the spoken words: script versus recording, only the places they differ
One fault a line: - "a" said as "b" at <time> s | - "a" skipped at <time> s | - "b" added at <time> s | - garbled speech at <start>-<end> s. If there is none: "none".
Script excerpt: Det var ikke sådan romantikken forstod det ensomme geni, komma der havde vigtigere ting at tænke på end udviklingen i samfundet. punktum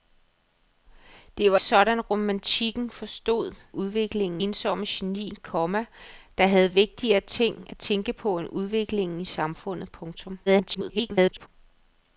- "ikke" skipped at 1.6 s
- "det" said as "udviklingen" at 3.7 s
- garbled speech at 10.5-11.5 s